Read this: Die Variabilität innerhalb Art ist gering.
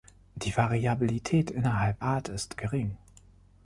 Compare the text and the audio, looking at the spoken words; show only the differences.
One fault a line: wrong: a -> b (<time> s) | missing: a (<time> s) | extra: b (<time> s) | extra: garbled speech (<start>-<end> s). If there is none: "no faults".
no faults